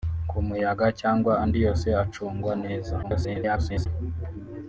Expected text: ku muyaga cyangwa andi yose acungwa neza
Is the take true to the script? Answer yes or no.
no